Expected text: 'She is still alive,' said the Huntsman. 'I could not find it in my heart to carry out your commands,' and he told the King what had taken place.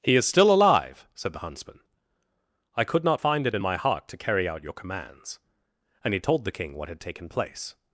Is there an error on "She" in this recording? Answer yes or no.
yes